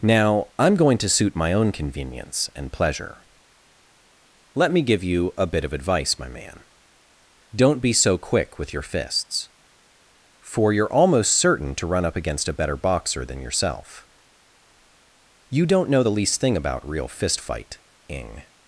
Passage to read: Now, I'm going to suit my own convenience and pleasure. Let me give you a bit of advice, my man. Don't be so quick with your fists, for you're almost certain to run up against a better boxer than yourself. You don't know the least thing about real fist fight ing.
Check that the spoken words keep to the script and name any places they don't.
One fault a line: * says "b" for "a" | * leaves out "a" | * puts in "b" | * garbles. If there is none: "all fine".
all fine